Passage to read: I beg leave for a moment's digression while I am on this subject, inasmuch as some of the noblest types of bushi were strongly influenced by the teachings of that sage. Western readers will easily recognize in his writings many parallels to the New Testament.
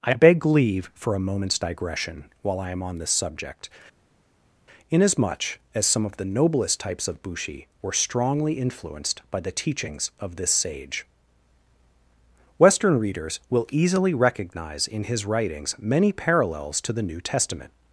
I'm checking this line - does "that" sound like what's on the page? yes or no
no